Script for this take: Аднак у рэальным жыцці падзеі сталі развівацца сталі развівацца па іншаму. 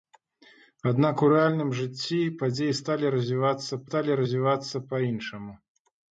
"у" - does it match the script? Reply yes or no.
yes